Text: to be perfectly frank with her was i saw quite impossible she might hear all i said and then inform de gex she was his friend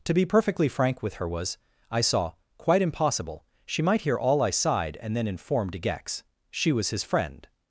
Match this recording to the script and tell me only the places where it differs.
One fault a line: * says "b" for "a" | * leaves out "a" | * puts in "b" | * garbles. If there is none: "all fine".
* says "sighed" for "said"